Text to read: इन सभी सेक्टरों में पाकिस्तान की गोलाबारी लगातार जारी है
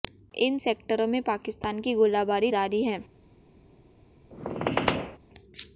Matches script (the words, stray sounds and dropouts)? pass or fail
fail